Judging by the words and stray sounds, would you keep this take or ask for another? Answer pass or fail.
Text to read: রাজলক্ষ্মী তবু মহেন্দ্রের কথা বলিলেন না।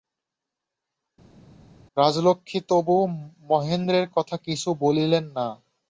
fail